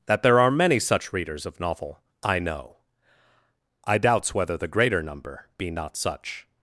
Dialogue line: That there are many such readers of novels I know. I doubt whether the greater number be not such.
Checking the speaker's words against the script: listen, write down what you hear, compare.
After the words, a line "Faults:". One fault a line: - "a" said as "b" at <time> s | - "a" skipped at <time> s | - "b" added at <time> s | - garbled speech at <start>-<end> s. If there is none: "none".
That there are many such readers of novel I know. I doubts whether the greater number be not such.
Faults:
- "novels" said as "novel" at 1.6 s
- "doubt" said as "doubts" at 4.0 s